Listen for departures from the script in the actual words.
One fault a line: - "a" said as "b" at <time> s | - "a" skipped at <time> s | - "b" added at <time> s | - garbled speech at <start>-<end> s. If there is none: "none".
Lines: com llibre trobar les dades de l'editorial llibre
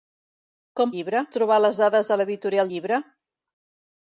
none